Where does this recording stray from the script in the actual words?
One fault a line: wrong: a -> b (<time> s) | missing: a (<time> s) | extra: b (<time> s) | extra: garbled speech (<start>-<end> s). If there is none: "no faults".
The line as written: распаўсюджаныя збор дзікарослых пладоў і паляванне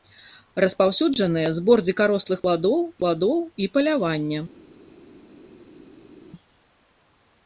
extra: пладоў (3.0 s)